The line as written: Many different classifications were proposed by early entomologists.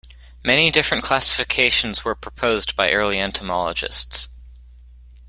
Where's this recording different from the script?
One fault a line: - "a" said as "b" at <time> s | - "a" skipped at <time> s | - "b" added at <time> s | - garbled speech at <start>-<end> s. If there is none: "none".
none